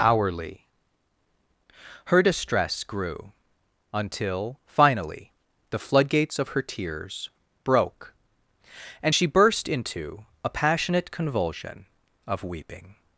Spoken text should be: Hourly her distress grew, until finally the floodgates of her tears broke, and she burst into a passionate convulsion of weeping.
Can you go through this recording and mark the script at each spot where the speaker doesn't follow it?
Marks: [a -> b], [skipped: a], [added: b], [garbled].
Hourly her distress grew, until finally the floodgates of her tears broke, and she burst into a passionate convulsion of weeping.